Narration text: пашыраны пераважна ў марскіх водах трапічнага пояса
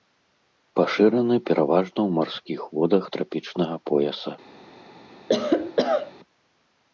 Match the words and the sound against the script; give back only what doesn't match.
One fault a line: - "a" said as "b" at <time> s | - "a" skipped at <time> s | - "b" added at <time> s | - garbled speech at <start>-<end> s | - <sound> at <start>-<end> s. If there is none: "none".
- cough at 5.3-6.1 s